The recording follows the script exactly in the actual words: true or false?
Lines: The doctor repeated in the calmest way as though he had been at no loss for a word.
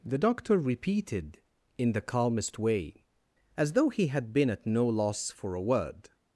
true